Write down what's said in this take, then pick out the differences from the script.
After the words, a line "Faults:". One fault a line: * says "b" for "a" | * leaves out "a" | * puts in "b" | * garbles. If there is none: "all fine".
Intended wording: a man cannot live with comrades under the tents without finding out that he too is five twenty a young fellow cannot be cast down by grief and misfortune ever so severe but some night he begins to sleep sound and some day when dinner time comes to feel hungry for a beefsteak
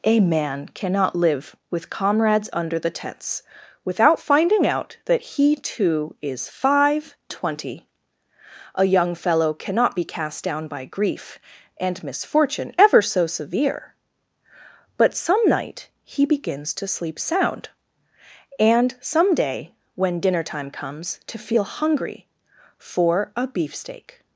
a man cannot live with comrades under the tents without finding out that he too is five twenty a young fellow cannot be cast down by grief and misfortune ever so severe but some night he begins to sleep sound and some day when dinner time comes to feel hungry for a beefsteak
Faults:
all fine